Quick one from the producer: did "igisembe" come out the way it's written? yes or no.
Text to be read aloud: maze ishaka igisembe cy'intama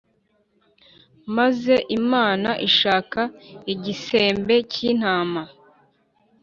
yes